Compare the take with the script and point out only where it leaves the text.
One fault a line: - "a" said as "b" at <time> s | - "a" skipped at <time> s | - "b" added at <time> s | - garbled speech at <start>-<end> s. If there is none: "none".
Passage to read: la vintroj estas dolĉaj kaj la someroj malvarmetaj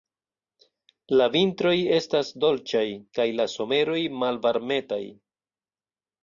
none